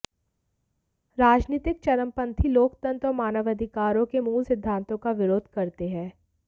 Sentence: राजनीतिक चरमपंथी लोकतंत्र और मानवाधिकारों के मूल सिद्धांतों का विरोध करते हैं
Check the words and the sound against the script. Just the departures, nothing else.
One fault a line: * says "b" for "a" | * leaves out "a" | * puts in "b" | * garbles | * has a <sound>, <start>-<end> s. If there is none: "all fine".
all fine